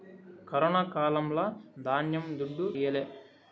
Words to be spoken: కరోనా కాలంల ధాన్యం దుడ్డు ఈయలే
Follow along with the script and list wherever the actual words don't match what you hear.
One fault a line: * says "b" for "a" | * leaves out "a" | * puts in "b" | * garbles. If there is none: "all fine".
all fine